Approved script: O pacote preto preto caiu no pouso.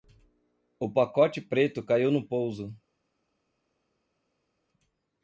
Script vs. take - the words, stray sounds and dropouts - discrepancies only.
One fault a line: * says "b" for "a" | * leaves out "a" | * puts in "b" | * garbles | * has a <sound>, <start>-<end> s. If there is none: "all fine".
* leaves out "preto"